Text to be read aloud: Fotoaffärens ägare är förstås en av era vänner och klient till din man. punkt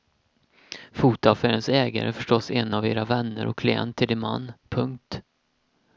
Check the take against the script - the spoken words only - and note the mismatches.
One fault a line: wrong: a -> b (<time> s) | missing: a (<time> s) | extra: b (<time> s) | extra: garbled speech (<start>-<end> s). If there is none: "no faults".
no faults